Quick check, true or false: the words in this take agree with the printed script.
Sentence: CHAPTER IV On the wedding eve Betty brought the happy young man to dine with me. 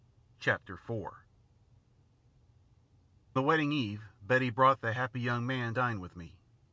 false